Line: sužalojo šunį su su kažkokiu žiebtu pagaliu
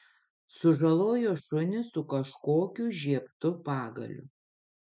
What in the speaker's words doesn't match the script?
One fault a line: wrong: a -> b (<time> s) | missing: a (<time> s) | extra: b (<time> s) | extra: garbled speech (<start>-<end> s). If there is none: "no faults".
missing: su (2.0 s)